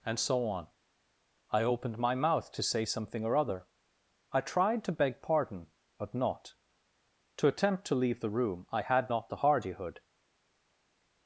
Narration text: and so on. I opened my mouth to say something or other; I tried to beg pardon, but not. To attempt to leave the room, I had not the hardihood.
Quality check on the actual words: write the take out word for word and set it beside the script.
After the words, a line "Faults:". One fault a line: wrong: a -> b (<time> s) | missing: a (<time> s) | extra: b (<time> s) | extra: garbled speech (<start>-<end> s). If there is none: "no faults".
and so on. I opened my mouth to say something or other; I tried to beg pardon, but not. To attempt to leave the room, I had not the hardihood.
Faults:
no faults